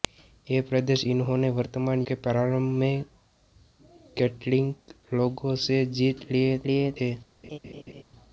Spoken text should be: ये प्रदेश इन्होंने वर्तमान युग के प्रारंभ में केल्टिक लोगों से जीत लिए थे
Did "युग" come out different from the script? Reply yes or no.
yes